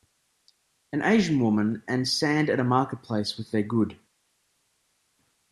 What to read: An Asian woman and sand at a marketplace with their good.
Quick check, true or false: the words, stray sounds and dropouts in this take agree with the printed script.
true